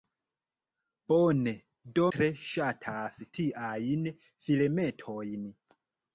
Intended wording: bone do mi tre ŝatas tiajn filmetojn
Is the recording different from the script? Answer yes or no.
yes